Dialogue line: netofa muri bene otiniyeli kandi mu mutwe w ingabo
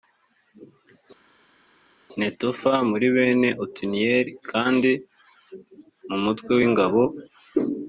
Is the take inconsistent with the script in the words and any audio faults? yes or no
no